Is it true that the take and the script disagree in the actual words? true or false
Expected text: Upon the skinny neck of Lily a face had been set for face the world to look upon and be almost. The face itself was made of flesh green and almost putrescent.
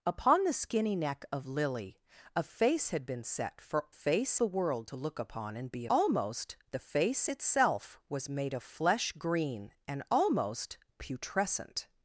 false